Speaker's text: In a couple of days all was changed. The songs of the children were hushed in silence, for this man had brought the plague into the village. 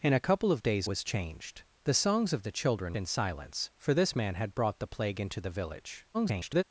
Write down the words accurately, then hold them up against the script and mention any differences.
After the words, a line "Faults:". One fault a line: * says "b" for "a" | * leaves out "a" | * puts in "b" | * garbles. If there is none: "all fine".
In a couple of days was changed. The songs of the children in silence, for this man had brought the plague into the village. [garbled]
Faults:
* leaves out "all"
* leaves out "were hushed"
* garbles